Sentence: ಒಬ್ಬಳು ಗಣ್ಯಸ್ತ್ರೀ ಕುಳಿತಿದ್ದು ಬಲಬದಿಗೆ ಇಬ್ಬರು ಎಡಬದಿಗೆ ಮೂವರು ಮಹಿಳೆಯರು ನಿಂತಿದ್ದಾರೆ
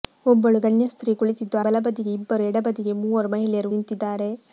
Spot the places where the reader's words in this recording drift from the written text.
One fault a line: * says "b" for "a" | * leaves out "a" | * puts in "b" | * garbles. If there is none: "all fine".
all fine